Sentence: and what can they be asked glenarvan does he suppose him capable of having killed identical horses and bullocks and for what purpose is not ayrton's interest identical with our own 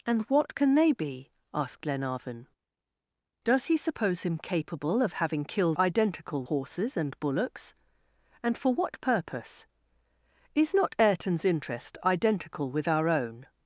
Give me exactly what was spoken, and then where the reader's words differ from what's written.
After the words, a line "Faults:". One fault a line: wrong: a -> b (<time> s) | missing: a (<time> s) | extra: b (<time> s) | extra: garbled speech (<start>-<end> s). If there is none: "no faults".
and what can they be asked glenarvan does he suppose him capable of having killed identical horses and bullocks and for what purpose is not ayrton's interest identical with our own
Faults:
no faults